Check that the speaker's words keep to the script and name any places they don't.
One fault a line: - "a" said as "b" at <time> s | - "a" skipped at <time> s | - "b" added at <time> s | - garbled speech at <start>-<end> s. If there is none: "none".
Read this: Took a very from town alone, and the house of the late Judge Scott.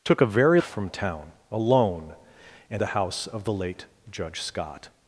none